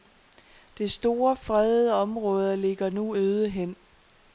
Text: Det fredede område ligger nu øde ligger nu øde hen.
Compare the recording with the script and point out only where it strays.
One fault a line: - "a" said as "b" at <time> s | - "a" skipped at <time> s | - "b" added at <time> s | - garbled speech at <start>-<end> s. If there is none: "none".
- "store" added at 0.9 s
- "ligger nu øde" skipped at 3.5 s